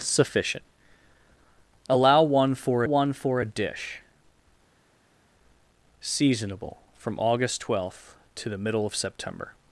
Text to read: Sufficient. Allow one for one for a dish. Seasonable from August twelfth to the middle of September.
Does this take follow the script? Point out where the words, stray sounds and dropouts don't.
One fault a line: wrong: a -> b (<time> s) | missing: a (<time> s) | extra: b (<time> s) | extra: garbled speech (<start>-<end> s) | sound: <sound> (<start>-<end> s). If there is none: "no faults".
no faults